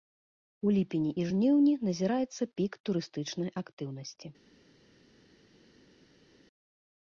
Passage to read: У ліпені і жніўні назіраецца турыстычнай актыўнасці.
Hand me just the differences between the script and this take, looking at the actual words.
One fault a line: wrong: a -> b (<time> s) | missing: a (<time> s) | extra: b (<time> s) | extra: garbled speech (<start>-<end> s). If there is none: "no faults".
extra: пік (2.6 s)